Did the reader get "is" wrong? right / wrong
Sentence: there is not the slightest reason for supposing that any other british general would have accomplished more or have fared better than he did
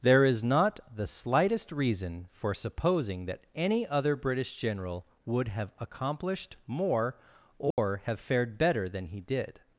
right